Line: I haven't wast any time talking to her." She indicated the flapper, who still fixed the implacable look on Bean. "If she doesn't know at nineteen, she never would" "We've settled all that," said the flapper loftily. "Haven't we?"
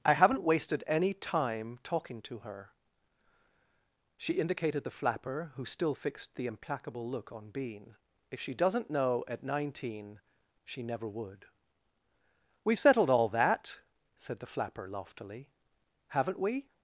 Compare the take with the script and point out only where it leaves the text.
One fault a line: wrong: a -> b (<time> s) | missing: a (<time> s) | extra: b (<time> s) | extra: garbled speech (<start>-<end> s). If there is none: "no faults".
wrong: wast -> wasted (0.4 s)